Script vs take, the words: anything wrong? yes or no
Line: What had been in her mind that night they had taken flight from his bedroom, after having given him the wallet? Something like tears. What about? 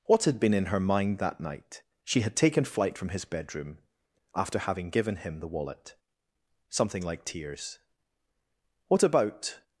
yes